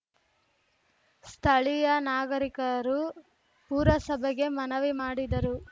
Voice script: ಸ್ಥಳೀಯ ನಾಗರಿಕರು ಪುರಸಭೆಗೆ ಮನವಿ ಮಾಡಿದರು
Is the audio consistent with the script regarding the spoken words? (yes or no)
yes